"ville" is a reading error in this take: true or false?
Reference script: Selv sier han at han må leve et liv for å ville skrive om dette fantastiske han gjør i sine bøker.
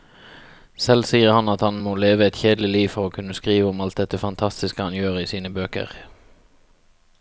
true